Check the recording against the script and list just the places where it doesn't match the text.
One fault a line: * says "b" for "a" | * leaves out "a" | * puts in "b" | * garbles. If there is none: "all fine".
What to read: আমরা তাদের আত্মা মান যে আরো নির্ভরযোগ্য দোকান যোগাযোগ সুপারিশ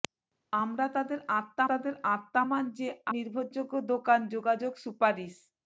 * puts in "তাদের আত্মা"
* leaves out "আরো"